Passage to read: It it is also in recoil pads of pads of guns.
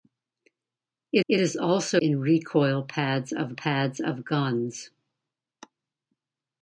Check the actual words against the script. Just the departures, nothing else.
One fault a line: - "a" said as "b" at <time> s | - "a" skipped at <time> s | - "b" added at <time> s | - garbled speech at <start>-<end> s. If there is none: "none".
none